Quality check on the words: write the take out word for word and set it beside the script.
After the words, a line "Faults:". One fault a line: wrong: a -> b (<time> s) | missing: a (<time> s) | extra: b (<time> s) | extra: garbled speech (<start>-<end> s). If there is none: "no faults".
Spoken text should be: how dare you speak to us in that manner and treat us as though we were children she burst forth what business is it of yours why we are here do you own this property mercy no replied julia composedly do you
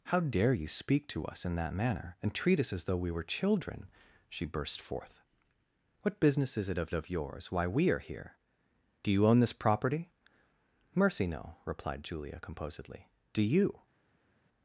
how dare you speak to us in that manner and treat us as though we were children she burst forth what business is it of of yours why we are here do you own this property mercy no replied julia composedly do you
Faults:
extra: of (6.9 s)